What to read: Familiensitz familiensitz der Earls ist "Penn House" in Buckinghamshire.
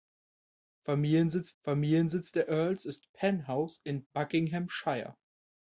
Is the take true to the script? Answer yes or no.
yes